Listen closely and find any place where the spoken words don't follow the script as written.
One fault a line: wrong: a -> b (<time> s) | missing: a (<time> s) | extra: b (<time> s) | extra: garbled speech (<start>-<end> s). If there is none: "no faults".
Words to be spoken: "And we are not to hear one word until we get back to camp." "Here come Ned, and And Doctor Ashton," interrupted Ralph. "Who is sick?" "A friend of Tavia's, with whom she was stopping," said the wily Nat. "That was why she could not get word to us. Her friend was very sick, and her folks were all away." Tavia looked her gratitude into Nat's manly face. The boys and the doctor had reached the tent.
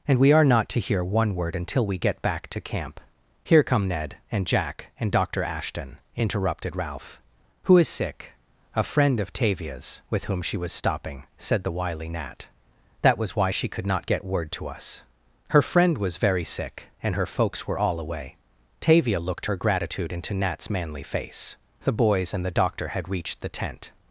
extra: Jack (4.5 s)